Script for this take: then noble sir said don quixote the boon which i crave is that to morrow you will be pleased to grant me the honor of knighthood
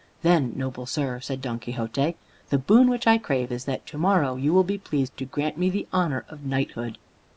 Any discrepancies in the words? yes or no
no